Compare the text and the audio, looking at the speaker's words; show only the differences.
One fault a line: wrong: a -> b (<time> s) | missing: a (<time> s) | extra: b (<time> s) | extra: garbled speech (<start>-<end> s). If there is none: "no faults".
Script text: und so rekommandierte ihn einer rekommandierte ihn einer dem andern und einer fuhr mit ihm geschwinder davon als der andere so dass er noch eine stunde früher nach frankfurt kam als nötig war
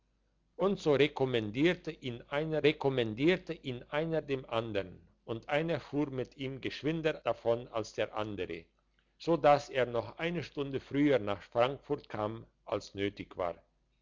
no faults